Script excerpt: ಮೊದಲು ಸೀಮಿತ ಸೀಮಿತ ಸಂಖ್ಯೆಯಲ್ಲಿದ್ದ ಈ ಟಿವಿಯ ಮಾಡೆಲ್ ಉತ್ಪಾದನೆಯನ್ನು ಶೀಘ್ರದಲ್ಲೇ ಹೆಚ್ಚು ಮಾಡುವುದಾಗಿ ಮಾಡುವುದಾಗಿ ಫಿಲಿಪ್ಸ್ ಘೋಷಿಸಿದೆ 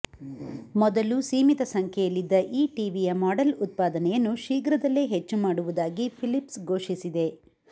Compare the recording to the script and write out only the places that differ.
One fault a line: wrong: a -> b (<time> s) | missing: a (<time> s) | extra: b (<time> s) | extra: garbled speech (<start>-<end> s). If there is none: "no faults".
missing: ಸೀಮಿತ (1.6 s)
missing: ಮಾಡುವುದಾಗಿ (6.1 s)